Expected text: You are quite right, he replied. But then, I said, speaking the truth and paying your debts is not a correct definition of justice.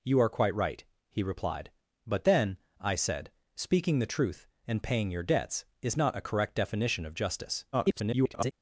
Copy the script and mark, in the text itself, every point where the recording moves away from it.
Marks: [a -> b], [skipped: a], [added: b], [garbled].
You are quite right, he replied. But then, I said, speaking the truth and paying your debts is not a correct definition of justice. [garbled]